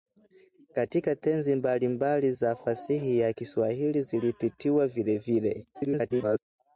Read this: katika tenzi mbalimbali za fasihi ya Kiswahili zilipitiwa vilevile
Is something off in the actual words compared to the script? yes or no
yes